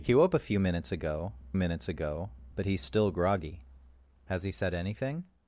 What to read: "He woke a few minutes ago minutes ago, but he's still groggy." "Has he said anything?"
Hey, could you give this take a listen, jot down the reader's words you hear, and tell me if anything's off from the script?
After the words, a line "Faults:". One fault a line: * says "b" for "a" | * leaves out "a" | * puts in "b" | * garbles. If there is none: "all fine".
"He woke a few minutes ago minutes ago, but he's still groggy." "Has he said anything?"
Faults:
all fine